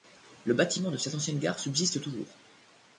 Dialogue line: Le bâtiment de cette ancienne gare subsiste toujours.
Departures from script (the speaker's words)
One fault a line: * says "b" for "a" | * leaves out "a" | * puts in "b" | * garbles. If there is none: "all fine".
all fine